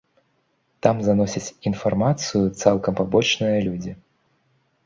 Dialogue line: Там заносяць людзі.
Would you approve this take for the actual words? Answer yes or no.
no